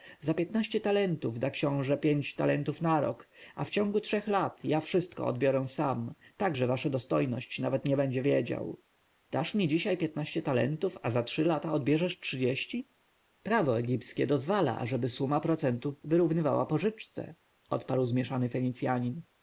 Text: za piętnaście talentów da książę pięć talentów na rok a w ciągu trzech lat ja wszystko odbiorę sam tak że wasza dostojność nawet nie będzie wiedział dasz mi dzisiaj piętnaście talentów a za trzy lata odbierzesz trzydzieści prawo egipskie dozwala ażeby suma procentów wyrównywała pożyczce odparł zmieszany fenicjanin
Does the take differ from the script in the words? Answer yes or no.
no